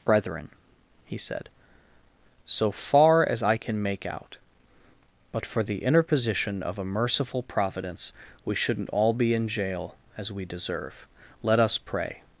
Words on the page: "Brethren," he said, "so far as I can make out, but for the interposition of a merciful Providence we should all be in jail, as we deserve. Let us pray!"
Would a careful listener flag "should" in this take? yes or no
yes